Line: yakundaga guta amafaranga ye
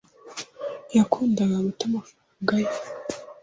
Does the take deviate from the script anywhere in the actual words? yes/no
no